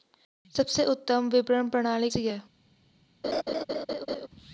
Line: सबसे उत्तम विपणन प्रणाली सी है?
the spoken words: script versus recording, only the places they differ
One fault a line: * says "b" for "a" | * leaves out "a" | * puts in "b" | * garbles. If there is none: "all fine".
all fine